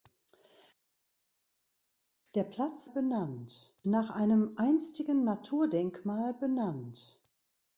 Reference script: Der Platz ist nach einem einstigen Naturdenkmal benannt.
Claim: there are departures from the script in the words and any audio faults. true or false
true